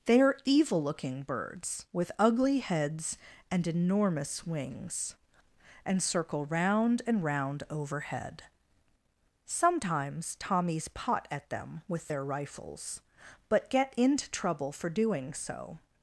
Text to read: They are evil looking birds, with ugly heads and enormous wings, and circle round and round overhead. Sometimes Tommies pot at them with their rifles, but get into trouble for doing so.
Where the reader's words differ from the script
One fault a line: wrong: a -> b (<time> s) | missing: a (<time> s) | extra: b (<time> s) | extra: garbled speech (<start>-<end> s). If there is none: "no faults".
no faults